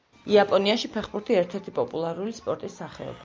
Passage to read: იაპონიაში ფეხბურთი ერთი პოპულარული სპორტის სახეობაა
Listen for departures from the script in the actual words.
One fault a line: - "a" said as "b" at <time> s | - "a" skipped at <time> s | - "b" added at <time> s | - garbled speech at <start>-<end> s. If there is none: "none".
- "ერთ" added at 1.4 s